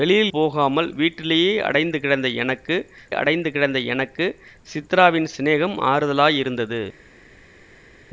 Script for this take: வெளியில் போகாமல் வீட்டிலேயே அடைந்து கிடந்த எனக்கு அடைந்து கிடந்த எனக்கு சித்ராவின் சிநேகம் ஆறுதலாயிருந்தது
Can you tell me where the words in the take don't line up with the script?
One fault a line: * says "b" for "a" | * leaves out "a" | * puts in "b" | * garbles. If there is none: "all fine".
all fine